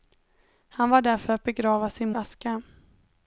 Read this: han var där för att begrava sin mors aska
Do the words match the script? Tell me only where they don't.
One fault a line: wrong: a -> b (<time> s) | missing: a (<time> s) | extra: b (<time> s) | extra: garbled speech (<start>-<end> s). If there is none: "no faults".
missing: mors (2.1 s)